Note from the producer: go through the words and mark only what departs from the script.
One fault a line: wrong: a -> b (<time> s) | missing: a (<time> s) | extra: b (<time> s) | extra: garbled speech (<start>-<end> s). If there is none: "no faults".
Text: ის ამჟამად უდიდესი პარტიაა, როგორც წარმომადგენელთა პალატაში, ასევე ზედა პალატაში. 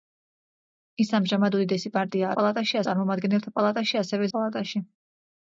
wrong: როგორც -> პალატაში (2.4 s)
missing: ზედა (4.3 s)